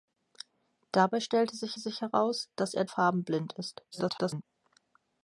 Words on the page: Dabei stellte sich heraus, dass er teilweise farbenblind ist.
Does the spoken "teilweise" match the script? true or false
false